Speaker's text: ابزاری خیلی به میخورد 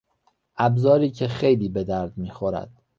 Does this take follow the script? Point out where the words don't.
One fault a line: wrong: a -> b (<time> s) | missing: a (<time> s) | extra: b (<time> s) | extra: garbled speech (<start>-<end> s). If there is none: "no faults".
extra: که (1.1 s)
extra: درد (1.8 s)